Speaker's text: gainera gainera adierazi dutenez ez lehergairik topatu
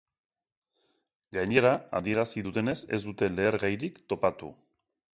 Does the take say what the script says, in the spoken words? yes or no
no